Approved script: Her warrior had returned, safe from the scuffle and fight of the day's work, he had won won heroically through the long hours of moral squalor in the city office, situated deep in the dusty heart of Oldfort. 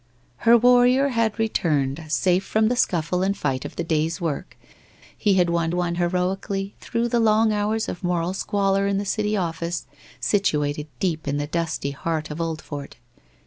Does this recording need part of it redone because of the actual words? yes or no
no